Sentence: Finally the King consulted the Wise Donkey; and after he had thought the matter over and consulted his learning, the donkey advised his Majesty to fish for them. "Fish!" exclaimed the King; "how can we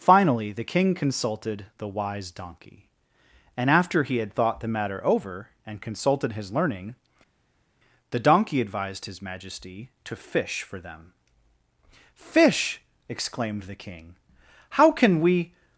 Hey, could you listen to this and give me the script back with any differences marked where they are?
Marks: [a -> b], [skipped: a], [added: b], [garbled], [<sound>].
Finally the King consulted the Wise Donkey; and after he had thought the matter over and consulted his learning, the donkey advised his Majesty to fish for them. "Fish!" exclaimed the King; "how can we